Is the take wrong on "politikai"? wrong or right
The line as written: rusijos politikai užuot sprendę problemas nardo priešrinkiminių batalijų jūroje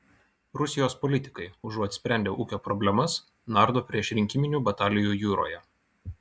right